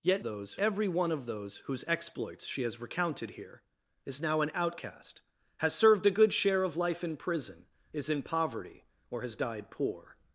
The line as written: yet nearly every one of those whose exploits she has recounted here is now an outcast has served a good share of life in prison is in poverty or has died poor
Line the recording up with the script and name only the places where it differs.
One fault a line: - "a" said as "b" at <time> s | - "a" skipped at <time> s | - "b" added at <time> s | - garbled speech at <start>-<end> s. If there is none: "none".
- "nearly" said as "those" at 0.2 s